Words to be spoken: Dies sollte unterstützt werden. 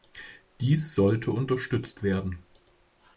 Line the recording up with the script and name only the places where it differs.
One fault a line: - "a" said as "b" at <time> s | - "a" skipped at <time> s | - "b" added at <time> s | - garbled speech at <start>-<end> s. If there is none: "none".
none